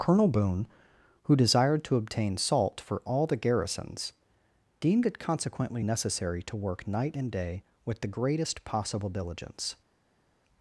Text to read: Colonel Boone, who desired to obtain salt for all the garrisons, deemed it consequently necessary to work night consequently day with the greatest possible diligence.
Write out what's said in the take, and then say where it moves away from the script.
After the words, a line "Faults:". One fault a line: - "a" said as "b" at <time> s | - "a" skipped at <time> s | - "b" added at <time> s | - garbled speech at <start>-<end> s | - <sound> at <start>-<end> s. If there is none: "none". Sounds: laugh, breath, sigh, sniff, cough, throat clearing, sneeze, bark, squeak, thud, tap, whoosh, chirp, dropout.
Colonel Boone, who desired to obtain salt for all the garrisons, deemed it consequently necessary to work night and day with the greatest possible diligence.
Faults:
- "consequently" said as "and" at 7.2 s